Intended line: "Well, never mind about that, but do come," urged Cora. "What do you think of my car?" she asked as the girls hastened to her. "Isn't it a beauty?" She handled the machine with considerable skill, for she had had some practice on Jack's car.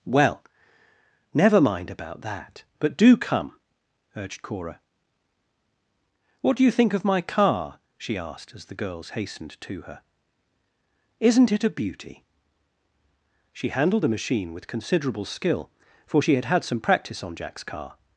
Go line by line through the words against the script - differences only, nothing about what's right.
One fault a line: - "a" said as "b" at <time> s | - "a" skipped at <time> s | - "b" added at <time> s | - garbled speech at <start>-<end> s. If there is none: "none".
none